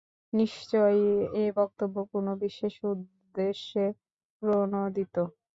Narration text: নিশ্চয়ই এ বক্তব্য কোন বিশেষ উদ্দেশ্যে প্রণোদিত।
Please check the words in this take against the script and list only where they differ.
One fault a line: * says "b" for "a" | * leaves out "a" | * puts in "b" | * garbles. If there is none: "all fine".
all fine